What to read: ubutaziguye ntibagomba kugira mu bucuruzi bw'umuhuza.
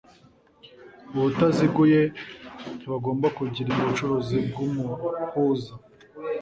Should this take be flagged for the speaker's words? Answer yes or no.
no